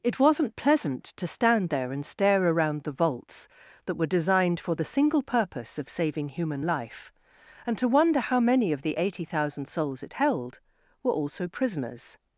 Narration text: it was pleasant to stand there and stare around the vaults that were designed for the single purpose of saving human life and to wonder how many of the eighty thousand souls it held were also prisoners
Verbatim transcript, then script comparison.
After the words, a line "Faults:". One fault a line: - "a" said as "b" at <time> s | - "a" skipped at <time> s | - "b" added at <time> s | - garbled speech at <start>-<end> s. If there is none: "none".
it wasn't pleasant to stand there and stare around the vaults that were designed for the single purpose of saving human life and to wonder how many of the eighty thousand souls it held were also prisoners
Faults:
- "was" said as "wasn't" at 0.2 s